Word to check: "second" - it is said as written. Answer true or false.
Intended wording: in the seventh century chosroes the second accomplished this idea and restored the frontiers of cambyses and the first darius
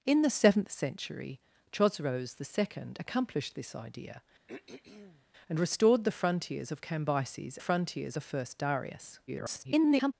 true